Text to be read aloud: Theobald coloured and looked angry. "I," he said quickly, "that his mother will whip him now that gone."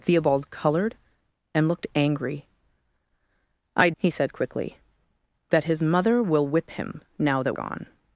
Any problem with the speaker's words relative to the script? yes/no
no